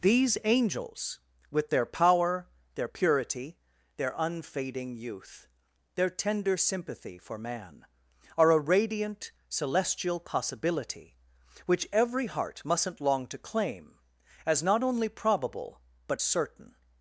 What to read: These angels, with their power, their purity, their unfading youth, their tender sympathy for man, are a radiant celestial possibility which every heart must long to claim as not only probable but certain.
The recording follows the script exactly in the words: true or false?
false